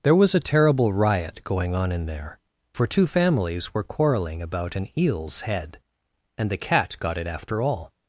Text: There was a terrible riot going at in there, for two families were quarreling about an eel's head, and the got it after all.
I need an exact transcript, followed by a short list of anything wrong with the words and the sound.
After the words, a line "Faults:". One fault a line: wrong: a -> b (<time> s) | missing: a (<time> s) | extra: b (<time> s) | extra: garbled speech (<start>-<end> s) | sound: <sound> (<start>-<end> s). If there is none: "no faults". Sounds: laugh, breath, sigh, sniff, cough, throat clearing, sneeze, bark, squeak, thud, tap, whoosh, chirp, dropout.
There was a terrible riot going on in there, for two families were quarreling about an eel's head, and the cat got it after all.
Faults:
wrong: at -> on (1.8 s)
extra: cat (6.6 s)